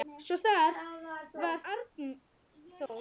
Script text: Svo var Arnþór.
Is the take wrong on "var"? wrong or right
right